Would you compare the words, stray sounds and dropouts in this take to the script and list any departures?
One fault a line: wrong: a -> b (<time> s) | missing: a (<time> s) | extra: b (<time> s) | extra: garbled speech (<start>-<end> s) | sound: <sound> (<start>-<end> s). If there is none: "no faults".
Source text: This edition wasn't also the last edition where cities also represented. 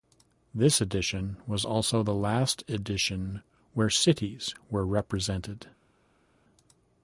wrong: wasn't -> was (1.4 s)
wrong: also -> were (4.7 s)